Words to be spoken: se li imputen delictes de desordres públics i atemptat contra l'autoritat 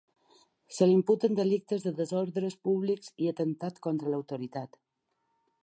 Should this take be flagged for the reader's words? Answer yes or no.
no